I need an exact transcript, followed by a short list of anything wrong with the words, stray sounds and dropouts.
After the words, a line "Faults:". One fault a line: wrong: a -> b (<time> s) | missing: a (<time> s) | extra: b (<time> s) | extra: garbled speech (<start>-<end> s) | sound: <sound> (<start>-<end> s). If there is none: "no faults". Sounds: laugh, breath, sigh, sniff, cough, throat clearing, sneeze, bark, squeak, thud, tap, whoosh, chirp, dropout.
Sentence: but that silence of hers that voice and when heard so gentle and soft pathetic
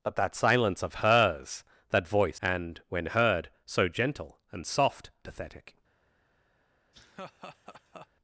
but that silence of hers that voice and when heard so gentle and soft pathetic
Faults:
sound: laugh (6.9-8.1 s)